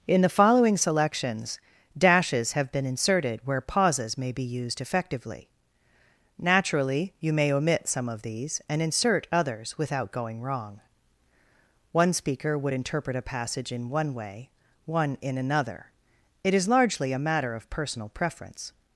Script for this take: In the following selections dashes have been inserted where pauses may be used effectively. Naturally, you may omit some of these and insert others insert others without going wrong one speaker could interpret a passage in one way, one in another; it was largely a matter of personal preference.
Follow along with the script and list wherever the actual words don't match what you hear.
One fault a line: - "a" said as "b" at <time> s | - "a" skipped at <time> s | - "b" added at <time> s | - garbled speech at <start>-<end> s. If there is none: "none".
- "insert others" skipped at 9.8 s
- "could" said as "would" at 12.6 s
- "was" said as "is" at 16.5 s